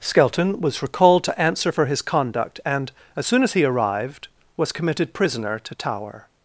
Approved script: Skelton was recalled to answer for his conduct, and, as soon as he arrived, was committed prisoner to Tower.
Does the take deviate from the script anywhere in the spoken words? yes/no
no